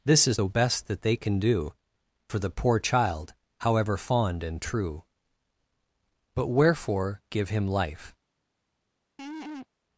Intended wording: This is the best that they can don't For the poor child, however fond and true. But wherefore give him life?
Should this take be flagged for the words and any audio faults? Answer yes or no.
yes